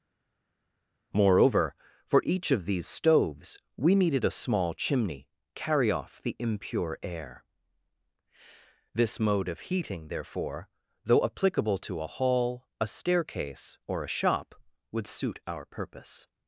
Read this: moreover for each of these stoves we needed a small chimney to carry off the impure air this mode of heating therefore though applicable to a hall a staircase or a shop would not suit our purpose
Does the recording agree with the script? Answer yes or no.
no